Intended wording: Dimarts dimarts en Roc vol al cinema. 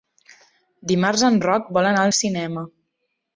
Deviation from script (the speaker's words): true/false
true